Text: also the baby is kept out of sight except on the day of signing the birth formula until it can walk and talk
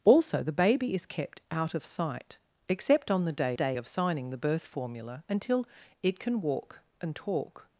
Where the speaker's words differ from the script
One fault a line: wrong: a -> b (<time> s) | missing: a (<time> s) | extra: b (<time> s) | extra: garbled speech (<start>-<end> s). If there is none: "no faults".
extra: day (3.5 s)